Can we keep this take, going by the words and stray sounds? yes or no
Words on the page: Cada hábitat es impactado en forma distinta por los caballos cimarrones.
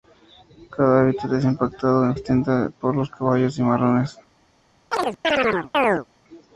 no